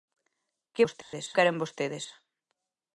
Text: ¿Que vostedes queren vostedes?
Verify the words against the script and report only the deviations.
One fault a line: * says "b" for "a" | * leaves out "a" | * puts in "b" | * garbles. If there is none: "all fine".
all fine